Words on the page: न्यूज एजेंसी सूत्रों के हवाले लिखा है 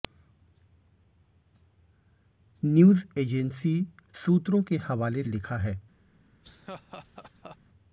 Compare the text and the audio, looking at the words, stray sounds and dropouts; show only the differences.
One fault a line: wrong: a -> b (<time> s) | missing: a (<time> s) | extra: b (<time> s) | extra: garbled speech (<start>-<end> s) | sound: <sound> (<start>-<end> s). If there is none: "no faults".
sound: laugh (6.4-7.6 s)